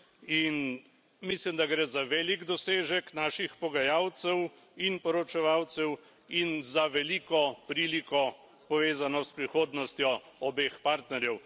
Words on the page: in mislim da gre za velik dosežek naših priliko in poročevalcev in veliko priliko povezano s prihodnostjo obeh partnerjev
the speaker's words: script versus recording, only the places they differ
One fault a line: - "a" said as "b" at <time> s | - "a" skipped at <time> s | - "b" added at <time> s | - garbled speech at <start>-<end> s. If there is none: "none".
- "priliko" said as "pogajalcev" at 3.6 s
- "za" added at 6.6 s